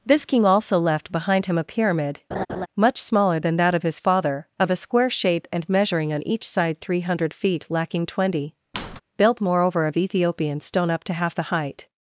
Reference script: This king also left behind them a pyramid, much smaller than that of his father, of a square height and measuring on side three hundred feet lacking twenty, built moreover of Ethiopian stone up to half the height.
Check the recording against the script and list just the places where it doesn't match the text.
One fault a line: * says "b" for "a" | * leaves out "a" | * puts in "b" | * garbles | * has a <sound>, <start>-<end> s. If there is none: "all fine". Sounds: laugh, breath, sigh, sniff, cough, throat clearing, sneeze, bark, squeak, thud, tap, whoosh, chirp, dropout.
* says "him" for "them"
* has a laugh, 2.3-2.7 s
* says "shape" for "height"
* puts in "each"
* has a squeak, 8.7-9.0 s